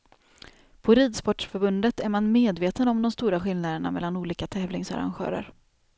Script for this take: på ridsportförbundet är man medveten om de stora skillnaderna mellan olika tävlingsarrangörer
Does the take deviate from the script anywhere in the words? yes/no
no